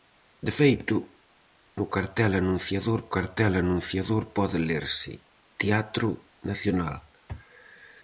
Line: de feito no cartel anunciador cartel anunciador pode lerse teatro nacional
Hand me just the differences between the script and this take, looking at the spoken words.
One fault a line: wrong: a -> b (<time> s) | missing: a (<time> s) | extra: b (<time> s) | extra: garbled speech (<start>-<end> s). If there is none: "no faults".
no faults